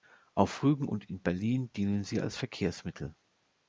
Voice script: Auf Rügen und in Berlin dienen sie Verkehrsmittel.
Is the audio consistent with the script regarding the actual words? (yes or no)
no